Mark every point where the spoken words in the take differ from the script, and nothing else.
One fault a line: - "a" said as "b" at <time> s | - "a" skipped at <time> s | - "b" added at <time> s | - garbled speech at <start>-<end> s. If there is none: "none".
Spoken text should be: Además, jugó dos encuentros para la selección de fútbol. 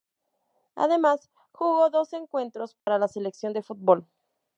none